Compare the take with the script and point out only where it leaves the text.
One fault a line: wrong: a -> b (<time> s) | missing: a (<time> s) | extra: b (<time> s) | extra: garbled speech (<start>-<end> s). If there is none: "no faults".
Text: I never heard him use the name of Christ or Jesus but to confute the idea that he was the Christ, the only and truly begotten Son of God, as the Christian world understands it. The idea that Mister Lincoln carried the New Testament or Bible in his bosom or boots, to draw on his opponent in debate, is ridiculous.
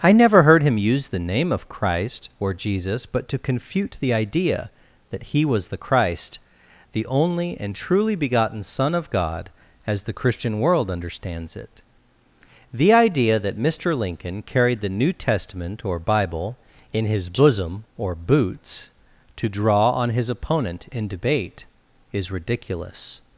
no faults